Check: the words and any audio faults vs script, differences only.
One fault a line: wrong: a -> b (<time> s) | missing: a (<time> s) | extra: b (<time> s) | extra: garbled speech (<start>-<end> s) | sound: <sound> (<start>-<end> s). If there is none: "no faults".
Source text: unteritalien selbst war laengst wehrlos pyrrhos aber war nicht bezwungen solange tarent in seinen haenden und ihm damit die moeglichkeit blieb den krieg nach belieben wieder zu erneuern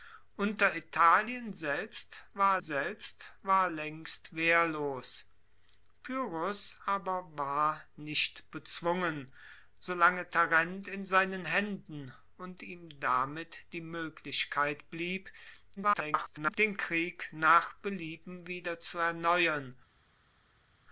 extra: selbst war (2.6 s)
extra: garbled speech (15.8-16.6 s)